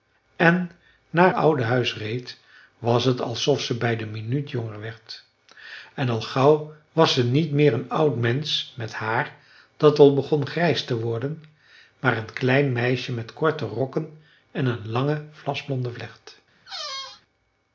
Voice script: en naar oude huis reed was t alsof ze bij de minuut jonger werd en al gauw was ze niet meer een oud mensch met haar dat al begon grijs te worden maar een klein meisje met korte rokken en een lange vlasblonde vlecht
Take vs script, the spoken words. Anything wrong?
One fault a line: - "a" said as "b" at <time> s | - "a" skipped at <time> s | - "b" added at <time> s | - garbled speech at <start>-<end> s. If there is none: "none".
none